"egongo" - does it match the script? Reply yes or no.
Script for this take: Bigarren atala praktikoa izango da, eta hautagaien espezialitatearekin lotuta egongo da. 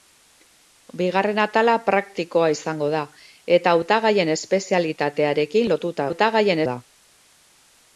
no